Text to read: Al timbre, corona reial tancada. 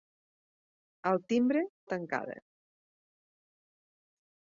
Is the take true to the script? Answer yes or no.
no